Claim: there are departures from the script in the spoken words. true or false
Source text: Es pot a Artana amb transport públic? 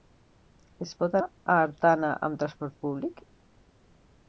false